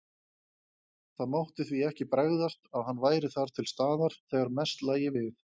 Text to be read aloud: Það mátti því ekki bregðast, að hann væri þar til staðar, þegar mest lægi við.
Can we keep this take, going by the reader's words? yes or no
yes